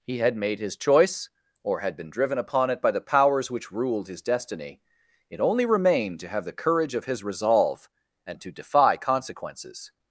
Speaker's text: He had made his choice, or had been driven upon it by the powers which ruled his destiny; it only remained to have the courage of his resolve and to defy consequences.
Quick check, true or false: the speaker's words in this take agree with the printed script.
true